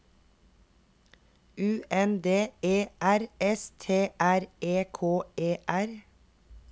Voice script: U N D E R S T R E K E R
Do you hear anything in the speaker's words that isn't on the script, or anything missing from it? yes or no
no